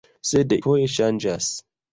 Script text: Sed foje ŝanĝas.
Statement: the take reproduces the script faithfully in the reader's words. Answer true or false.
true